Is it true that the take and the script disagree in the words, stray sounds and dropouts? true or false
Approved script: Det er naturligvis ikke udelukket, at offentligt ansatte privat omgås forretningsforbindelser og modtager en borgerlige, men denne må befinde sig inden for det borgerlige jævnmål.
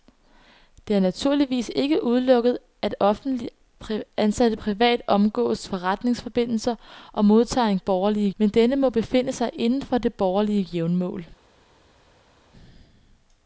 false